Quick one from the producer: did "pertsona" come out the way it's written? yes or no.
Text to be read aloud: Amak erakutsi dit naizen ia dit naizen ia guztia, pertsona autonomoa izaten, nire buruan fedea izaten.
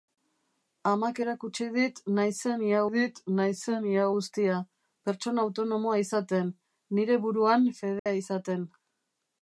yes